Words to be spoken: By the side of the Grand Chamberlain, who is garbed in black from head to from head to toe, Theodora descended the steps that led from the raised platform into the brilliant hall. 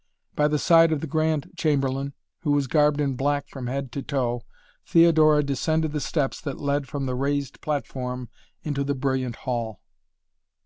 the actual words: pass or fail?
fail